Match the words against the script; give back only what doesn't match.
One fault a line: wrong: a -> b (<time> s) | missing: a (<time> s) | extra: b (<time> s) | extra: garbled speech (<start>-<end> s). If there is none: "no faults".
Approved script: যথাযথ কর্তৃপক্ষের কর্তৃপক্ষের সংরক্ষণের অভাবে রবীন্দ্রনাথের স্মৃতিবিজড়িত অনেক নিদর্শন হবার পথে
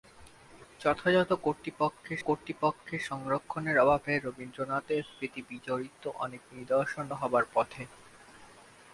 no faults